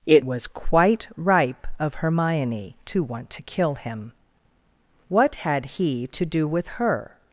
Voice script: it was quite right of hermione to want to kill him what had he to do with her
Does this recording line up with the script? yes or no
no